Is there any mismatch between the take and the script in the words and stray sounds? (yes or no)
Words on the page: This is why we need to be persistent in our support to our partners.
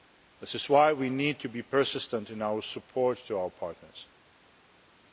no